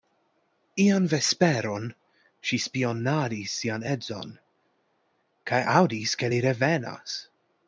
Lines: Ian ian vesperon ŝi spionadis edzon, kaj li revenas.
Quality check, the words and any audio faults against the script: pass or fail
fail